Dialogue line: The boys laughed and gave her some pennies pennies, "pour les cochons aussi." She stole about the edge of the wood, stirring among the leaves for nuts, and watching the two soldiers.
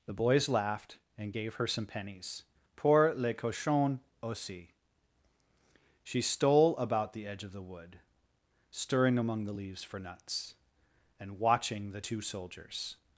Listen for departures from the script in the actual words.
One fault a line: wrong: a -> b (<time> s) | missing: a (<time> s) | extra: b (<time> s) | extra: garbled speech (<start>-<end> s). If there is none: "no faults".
missing: pennies (2.4 s)